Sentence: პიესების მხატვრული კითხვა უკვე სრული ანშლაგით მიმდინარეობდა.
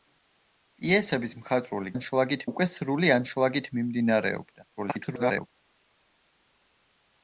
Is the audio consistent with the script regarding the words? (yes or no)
no